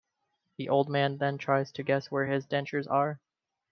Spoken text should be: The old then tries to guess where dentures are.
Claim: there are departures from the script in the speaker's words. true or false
true